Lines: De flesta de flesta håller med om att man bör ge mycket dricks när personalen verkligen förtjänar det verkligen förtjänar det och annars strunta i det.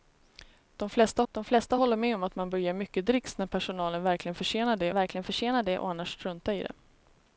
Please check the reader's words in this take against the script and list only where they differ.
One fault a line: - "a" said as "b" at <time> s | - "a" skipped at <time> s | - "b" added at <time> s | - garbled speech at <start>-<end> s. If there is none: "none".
none